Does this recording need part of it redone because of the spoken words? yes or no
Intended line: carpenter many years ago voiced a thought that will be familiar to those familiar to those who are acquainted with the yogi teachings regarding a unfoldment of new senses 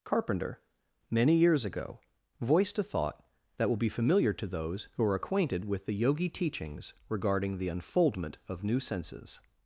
yes